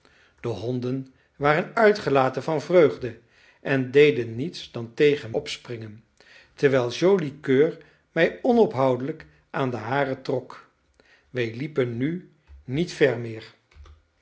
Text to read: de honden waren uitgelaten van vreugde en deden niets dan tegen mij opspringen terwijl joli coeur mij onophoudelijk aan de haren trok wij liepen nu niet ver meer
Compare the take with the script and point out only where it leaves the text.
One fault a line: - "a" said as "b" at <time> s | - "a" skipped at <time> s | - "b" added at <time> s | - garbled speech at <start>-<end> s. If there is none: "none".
- "mij" skipped at 5.3 s